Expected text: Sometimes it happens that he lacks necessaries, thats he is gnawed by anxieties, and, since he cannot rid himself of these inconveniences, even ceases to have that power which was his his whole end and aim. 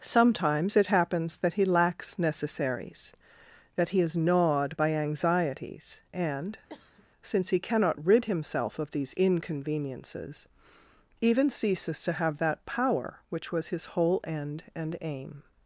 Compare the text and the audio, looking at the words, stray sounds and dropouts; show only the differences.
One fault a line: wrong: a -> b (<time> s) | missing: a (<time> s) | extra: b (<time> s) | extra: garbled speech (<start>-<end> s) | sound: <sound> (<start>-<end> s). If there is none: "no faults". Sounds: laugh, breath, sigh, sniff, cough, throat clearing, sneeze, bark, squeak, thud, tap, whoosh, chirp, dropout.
wrong: thats -> that (3.8 s)
sound: cough (6.7-7.1 s)
missing: his (13.9 s)